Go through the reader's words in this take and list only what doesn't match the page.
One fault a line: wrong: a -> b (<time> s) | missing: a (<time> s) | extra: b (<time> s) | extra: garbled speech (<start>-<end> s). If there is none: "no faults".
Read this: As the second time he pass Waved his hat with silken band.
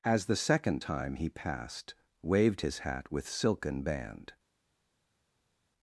wrong: pass -> passed (1.3 s)